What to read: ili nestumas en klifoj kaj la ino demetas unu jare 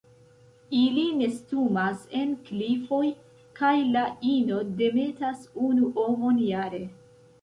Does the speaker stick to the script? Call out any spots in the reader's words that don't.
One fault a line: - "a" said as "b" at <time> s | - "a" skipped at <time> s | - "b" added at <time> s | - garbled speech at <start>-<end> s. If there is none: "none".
- "ovon" added at 6.0 s